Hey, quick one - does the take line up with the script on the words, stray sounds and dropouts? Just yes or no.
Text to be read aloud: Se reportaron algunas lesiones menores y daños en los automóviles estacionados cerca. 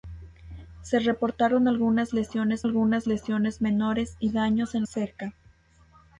no